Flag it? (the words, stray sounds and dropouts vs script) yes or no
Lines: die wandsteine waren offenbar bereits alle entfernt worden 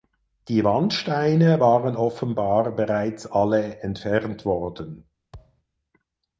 yes